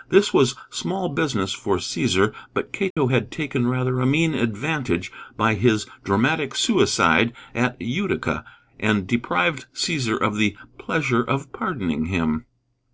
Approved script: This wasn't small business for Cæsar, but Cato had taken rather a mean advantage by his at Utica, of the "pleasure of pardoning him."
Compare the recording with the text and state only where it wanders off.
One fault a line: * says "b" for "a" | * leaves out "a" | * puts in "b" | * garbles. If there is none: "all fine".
* says "was" for "wasn't"
* puts in "dramatic suicide"
* puts in "and deprived Cæsar"